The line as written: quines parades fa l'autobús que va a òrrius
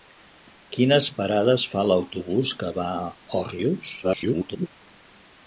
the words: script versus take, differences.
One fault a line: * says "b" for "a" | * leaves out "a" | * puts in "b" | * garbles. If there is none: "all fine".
* garbles